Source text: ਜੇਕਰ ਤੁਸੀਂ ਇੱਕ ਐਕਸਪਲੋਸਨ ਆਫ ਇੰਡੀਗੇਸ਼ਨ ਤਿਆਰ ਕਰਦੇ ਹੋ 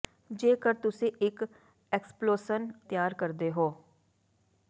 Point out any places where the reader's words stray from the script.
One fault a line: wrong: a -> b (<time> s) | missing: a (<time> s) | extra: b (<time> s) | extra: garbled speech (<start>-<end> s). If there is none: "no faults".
missing: ਆਫ ਇੰਡੀਗੇਸ਼ਨ (2.7 s)